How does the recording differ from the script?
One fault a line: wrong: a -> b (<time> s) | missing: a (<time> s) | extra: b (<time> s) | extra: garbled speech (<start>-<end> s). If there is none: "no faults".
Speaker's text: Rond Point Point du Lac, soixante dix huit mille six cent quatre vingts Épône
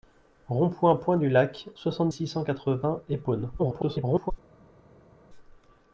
missing: dix huit mille (2.1 s)
extra: garbled speech (3.6-4.3 s)